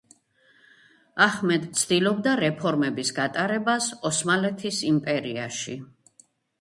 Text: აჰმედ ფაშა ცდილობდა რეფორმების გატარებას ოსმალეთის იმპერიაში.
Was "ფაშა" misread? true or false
true